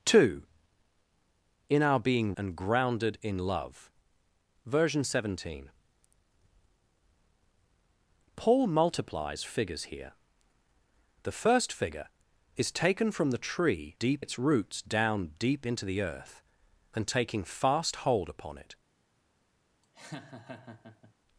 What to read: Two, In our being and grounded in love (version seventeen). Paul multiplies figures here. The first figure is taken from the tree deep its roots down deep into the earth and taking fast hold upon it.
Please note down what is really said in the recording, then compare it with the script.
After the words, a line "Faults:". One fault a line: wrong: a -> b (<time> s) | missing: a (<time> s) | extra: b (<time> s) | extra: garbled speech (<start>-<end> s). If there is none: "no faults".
Two, In our being and grounded in love (version seventeen). Paul multiplies figures here. The first figure is taken from the tree deep its roots down deep into the earth and taking fast hold upon it.
Faults:
no faults